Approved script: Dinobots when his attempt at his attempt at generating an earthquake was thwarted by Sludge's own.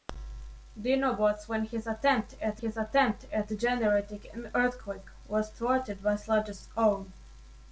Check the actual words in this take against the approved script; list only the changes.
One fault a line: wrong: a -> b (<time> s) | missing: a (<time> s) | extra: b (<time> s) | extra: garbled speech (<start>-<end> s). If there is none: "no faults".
no faults